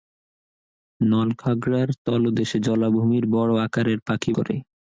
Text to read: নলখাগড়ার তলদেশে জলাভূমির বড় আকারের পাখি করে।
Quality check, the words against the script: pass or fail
pass